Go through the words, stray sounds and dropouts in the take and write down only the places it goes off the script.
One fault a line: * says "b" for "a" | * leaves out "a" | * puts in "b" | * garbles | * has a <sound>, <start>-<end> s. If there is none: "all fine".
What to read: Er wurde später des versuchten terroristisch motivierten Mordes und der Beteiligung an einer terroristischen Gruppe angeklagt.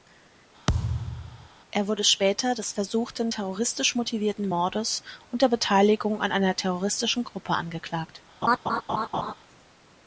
* has a thud, 0.7-1.5 s
* has a laugh, 8.4-9.3 s